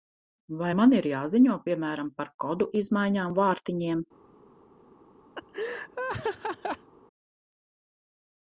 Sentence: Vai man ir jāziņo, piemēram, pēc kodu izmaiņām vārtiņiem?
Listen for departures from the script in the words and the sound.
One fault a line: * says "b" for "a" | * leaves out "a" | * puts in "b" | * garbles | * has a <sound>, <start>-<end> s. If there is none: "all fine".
* says "par" for "pēc"
* has a laugh, 5.3-6.9 s